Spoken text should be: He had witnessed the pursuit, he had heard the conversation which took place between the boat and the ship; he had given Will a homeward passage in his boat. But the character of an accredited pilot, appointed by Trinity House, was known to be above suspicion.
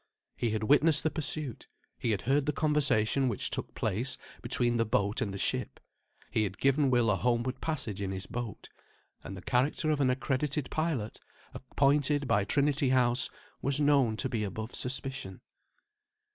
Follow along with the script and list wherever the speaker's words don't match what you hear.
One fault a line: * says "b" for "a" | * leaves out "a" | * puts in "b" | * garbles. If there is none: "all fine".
* says "And" for "But"